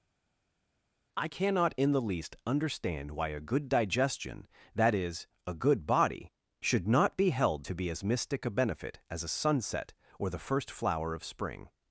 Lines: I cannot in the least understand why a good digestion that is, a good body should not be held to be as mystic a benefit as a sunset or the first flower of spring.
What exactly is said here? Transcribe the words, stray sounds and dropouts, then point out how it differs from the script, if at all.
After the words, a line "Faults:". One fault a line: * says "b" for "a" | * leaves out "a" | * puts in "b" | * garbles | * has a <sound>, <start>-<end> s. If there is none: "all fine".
I cannot in the least understand why a good digestion that is, a good body should not be held to be as mystic a benefit as a sunset or the first flower of spring.
Faults:
all fine